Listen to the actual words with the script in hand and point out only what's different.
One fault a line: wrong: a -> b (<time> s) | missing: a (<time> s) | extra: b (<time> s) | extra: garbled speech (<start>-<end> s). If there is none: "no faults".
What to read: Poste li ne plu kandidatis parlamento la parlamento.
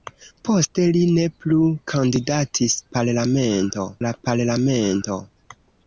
no faults